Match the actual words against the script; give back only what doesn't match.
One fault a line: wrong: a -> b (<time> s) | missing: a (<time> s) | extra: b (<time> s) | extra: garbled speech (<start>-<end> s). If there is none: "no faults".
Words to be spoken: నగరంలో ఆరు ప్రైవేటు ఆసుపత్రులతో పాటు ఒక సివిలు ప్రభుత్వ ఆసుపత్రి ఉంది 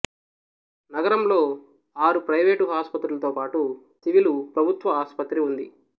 missing: ఒక (3.6 s)